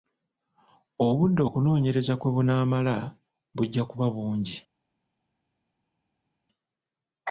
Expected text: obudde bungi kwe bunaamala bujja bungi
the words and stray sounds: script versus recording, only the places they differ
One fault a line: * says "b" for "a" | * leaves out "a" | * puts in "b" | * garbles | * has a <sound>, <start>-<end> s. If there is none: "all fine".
* says "okunoonyereza" for "bungi"
* puts in "kuba"